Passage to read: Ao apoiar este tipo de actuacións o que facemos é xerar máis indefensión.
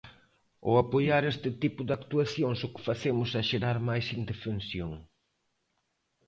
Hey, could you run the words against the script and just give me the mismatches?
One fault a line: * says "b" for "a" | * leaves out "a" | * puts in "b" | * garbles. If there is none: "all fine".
all fine